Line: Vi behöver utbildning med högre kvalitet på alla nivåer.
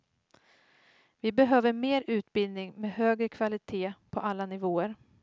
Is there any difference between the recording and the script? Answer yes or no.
yes